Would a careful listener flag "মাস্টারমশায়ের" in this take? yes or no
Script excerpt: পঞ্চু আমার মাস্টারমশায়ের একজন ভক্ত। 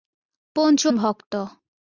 yes